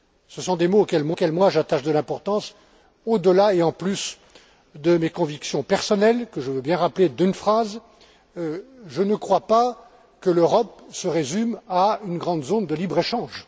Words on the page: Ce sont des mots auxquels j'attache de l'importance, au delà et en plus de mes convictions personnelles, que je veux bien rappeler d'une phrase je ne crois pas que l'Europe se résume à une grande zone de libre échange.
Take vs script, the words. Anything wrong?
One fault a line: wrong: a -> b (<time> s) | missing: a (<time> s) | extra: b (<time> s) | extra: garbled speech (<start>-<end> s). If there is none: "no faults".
extra: auxquels (1.1 s)